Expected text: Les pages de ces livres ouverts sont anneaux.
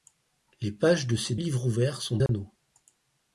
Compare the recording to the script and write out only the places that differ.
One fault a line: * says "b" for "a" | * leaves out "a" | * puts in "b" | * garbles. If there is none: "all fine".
all fine